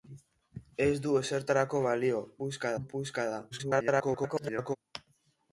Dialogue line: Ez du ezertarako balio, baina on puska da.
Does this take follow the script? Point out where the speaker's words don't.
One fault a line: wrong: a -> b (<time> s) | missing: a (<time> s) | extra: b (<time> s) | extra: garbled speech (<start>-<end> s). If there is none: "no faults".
wrong: baina -> puska (2.4 s)
extra: garbled speech (3.5-4.8 s)